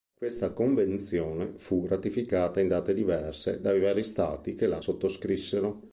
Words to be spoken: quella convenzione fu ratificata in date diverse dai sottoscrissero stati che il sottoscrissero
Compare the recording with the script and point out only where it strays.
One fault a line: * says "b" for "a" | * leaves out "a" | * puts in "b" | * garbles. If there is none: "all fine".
* says "questa" for "quella"
* says "vari" for "sottoscrissero"
* says "la" for "il"